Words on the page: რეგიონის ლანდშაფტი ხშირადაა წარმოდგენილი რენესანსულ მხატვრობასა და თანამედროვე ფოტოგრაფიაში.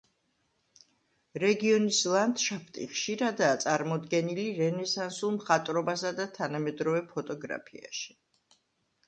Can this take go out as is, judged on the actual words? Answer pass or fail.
pass